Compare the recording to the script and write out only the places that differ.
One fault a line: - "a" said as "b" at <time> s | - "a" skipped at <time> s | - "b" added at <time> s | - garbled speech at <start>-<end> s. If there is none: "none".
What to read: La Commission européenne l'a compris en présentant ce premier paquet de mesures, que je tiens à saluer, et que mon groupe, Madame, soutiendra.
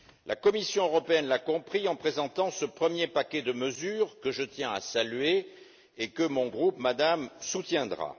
none